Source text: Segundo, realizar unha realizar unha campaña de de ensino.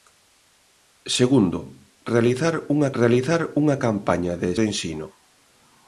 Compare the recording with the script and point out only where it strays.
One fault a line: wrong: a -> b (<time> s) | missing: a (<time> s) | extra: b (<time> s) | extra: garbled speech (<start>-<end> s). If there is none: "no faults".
no faults